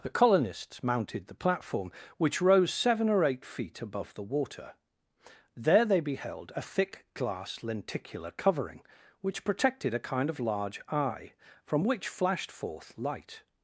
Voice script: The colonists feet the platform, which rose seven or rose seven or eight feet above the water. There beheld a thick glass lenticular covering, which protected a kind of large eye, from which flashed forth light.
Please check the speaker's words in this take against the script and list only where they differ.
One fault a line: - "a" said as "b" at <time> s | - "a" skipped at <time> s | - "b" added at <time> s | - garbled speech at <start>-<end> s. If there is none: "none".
- "feet" said as "mounted" at 0.8 s
- "rose seven or" skipped at 3.2 s
- "they" added at 5.8 s